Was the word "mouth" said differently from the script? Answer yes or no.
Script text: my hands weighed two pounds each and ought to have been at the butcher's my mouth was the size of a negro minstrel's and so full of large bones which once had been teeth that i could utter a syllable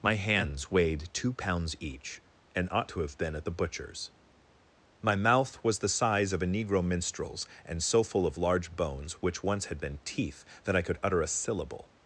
no